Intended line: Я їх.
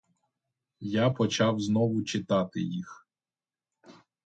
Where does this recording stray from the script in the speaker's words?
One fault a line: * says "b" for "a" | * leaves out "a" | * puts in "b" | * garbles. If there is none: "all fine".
* puts in "почав знову читати"